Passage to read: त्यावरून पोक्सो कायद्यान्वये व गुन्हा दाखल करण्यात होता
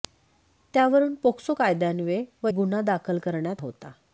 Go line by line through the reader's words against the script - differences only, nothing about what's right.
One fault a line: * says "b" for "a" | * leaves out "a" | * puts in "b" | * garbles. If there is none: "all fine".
all fine